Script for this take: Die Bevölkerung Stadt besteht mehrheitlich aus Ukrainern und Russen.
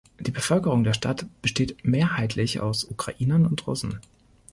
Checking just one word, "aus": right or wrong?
right